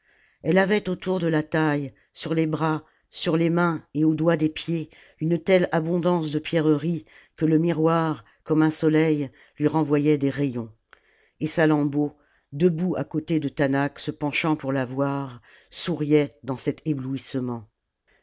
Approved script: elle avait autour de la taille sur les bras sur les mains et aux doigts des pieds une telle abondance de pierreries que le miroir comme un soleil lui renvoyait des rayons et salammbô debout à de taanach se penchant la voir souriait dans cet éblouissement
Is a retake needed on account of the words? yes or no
yes